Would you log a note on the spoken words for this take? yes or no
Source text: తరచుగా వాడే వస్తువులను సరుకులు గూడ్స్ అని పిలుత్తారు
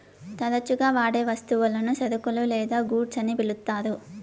yes